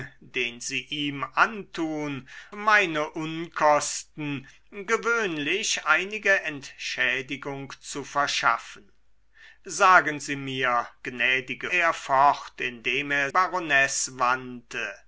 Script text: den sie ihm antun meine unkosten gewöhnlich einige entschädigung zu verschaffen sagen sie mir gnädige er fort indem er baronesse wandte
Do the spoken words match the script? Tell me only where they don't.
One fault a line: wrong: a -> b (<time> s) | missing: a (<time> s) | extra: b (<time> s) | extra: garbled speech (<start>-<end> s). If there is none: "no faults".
no faults